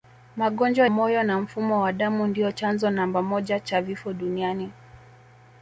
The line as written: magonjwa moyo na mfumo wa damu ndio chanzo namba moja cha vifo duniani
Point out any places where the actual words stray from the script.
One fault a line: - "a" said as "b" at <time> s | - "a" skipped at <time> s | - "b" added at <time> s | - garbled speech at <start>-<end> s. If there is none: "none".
none